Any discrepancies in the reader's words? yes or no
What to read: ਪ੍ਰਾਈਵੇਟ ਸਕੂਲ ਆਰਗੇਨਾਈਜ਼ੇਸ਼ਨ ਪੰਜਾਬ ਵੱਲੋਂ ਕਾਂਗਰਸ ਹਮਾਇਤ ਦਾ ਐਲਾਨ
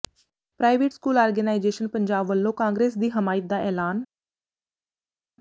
yes